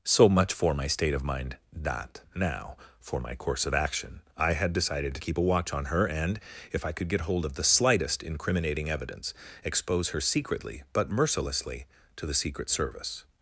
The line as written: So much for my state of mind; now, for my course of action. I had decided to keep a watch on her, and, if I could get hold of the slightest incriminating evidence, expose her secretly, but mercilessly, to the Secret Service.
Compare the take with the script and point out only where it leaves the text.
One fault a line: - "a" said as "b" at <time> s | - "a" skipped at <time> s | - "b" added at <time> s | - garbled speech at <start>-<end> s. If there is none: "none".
- "that" added at 1.7 s